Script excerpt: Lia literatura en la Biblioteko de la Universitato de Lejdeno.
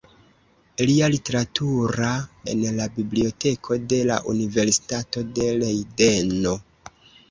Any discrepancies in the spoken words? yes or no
no